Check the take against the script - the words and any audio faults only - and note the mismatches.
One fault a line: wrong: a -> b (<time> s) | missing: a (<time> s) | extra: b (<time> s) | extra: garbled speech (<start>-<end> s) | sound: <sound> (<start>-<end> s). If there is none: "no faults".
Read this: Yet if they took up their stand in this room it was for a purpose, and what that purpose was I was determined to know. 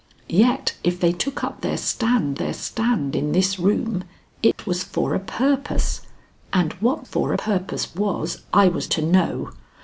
extra: their stand (2.4 s)
sound: dropout (4.5-4.6 s)
wrong: that -> for (7.0 s)
missing: determined (8.9 s)